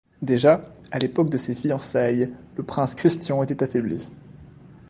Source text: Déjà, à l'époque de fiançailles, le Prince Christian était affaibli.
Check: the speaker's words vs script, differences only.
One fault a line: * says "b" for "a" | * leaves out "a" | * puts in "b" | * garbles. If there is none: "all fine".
* puts in "ses"